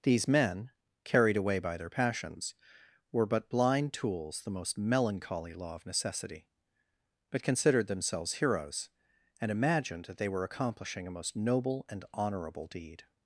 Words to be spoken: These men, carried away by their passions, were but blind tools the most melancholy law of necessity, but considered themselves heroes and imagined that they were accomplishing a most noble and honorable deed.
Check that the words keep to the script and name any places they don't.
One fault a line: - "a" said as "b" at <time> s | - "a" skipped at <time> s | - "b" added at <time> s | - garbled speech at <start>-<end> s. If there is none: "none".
none